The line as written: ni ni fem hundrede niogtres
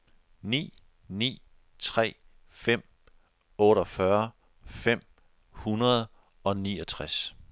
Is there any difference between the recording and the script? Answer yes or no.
yes